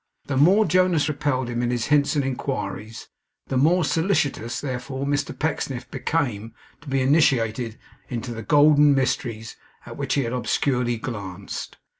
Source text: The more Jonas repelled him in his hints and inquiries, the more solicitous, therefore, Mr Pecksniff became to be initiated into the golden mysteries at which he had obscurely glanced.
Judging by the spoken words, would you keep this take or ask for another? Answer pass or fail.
pass